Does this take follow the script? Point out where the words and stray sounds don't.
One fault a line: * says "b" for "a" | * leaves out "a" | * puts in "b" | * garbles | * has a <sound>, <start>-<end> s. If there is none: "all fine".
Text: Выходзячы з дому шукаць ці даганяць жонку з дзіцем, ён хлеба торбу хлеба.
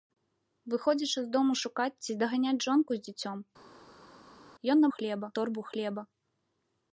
all fine